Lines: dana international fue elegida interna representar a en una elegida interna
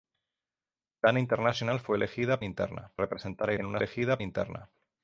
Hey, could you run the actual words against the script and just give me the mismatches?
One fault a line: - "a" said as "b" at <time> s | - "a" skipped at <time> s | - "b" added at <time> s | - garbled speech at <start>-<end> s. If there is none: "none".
none